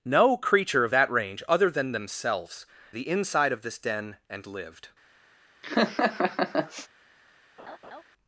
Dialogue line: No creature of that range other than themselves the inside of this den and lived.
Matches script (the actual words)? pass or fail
pass